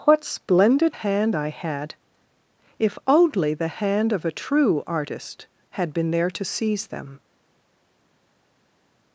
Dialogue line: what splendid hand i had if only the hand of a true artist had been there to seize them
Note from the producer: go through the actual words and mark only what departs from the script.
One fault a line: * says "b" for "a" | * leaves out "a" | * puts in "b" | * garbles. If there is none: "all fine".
all fine